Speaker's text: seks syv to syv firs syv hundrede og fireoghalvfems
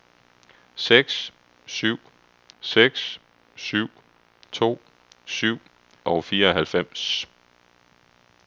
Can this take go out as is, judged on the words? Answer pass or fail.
fail